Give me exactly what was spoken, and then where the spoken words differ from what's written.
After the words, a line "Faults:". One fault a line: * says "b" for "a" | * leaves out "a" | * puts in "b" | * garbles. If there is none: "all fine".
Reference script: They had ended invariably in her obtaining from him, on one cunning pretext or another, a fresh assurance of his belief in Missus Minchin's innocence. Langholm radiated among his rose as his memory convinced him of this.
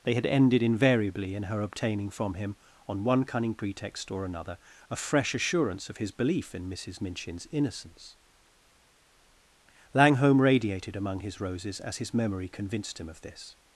They had ended invariably in her obtaining from him, on one cunning pretext or another, a fresh assurance of his belief in Missus Minchin's innocence. Langholm radiated among his roses as his memory convinced him of this.
Faults:
* says "roses" for "rose"